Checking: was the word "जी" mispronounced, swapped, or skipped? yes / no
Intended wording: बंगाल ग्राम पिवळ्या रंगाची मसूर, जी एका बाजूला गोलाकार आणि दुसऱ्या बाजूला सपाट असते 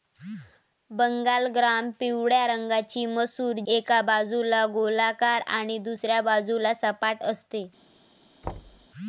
yes